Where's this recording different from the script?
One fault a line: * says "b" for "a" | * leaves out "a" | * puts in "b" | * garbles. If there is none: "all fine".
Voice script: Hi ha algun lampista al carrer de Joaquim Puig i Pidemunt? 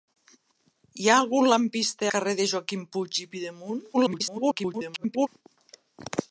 * leaves out "al"
* garbles